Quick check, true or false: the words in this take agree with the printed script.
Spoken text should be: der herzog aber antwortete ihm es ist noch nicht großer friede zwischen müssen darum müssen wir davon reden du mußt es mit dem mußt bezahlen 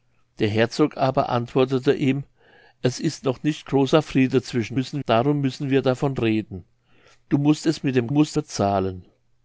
true